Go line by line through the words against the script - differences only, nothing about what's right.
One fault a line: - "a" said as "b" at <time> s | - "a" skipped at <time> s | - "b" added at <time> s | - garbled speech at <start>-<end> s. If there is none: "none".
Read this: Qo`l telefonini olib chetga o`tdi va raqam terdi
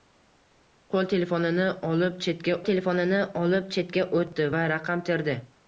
- "telefonini olib chetga" added at 2.7 s